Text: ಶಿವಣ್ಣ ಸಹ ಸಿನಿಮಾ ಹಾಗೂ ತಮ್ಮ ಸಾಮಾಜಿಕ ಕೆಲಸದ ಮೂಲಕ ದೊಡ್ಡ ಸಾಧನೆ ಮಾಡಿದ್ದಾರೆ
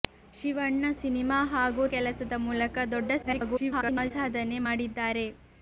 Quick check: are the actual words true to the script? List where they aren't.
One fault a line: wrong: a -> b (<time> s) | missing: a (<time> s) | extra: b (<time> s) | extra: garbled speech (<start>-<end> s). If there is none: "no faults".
missing: ಸಹ (0.8 s)
missing: ತಮ್ಮ ಸಾಮಾಜಿಕ (1.8 s)
extra: garbled speech (3.2-4.1 s)